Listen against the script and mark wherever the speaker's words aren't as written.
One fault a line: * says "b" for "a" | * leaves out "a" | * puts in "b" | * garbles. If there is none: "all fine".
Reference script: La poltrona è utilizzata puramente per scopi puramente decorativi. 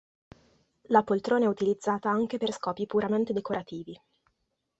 * says "anche" for "puramente"